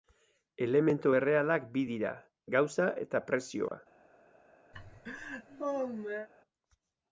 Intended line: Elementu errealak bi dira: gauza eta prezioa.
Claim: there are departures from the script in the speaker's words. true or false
false